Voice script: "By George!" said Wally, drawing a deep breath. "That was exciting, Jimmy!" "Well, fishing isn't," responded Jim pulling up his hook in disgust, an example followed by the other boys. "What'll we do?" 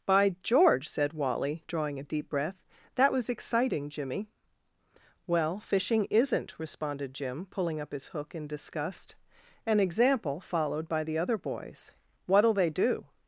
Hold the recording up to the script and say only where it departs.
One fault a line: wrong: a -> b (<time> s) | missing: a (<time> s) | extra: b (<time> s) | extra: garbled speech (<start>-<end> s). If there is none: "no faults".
wrong: we -> they (12.5 s)